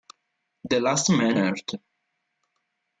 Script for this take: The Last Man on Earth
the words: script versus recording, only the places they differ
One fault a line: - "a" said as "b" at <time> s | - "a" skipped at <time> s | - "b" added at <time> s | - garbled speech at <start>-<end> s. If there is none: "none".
- "on" skipped at 1.4 s